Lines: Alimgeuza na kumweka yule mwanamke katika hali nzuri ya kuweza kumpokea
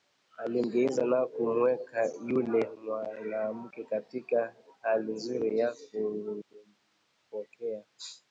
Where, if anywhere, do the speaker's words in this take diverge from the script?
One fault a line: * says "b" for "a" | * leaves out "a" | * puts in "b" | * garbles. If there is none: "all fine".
* leaves out "kuweza"